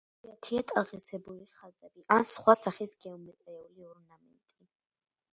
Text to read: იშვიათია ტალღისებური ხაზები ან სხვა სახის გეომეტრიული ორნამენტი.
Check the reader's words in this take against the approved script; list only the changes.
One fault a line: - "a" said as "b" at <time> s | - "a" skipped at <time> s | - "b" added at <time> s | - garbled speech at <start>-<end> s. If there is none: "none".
none